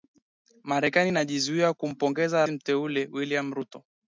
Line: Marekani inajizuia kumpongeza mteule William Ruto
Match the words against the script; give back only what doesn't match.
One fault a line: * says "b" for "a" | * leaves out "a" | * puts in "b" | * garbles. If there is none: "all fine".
all fine